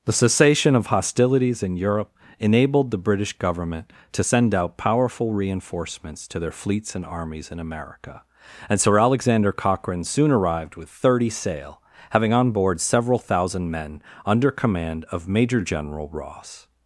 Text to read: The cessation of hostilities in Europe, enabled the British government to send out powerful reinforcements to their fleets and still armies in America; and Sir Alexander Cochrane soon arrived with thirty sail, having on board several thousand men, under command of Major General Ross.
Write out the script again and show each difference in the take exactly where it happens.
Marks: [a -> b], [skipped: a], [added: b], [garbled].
The cessation of hostilities in Europe, enabled the British government to send out powerful reinforcements to their fleets and [skipped: still] armies in America; and Sir Alexander Cochrane soon arrived with thirty sail, having on board several thousand men, under command of Major General Ross.